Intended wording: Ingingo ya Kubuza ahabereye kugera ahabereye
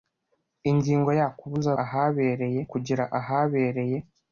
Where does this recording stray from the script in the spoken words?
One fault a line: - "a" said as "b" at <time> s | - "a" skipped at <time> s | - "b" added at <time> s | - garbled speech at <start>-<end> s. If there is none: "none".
none